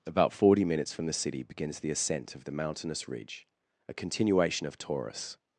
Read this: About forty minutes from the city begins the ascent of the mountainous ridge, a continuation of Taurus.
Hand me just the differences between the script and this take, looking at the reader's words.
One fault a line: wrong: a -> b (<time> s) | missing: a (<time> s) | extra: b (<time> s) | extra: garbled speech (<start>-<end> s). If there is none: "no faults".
no faults